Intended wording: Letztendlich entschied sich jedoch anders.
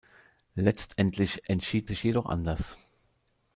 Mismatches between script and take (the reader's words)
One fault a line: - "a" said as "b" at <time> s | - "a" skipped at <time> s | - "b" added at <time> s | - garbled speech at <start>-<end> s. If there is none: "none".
none